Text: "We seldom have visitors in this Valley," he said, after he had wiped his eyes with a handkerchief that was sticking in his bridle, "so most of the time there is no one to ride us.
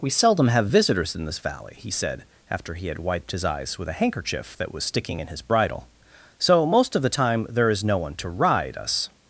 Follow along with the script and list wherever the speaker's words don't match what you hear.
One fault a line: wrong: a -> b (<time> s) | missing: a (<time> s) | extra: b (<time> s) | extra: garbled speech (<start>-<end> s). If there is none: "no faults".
no faults